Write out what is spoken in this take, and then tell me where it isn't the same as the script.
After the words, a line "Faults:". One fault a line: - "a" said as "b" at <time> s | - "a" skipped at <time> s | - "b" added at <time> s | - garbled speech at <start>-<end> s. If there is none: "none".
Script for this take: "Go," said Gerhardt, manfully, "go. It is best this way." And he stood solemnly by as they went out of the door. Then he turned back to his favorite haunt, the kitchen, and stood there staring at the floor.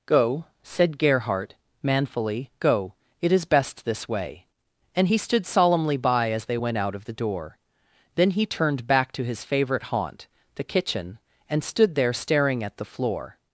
"Go," said Gerhardt, manfully, "go. It is best this way." And he stood solemnly by as they went out of the door. Then he turned back to his favorite haunt, the kitchen, and stood there staring at the floor.
Faults:
none